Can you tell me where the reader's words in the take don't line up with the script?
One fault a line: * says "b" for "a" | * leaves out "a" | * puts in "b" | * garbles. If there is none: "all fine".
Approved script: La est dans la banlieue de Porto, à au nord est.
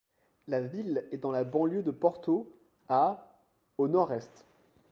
* puts in "ville"